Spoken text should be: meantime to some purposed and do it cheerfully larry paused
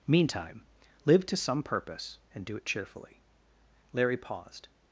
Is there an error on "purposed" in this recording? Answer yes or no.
yes